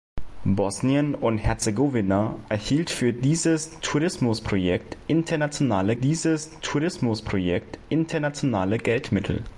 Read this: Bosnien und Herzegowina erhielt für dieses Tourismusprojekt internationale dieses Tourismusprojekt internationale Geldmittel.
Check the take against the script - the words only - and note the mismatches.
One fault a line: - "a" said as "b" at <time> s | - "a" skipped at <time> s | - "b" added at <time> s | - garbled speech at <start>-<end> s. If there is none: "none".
none